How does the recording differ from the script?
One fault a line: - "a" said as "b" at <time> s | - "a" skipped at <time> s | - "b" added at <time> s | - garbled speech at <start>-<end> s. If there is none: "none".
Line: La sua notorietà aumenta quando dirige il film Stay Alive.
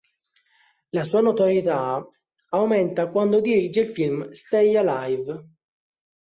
none